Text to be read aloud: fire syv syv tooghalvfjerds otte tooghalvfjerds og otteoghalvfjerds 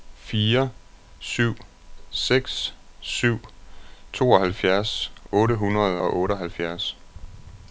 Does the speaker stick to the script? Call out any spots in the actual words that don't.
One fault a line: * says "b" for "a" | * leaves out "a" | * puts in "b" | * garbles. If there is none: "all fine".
* puts in "seks"
* says "hundrede" for "tooghalvfjerds"